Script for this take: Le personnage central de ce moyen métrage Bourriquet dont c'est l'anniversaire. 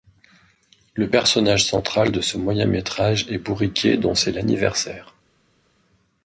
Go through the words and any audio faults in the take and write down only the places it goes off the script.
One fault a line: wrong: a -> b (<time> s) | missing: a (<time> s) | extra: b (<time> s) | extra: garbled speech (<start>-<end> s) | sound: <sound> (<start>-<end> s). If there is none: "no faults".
extra: est (3.3 s)